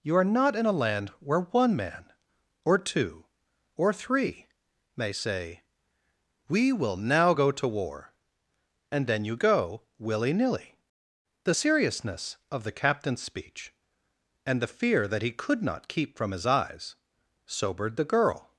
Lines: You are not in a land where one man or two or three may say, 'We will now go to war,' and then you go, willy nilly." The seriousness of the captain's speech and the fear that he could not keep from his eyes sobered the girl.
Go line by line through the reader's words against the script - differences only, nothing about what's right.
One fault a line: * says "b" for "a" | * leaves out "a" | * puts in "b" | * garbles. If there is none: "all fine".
all fine